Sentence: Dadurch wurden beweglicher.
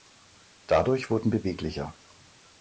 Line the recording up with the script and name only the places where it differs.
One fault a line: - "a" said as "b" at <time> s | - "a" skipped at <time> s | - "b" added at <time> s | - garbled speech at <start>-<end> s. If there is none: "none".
none